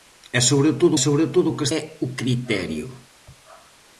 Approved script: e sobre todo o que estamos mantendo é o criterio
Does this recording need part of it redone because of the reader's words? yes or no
yes